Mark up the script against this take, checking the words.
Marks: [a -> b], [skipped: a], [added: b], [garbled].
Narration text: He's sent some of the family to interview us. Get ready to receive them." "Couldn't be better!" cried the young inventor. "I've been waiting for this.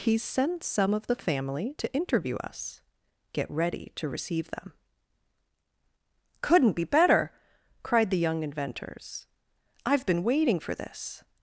He's sent some of the family to interview us. Get ready to receive them." "Couldn't be better!" cried the young [inventor. -> inventors] "I've been waiting for this.